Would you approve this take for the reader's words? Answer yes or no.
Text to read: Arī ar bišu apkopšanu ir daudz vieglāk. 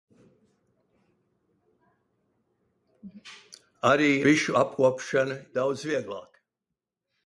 no